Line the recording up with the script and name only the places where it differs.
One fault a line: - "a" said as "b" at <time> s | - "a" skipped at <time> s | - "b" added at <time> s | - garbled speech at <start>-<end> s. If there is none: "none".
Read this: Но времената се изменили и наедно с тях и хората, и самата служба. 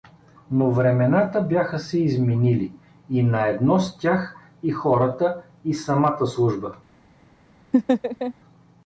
- "бяха" added at 1.4 s